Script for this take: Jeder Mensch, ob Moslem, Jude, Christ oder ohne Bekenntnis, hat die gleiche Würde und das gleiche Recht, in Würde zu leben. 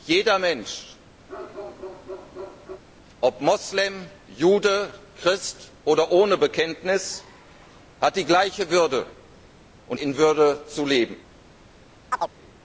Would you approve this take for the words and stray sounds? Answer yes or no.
no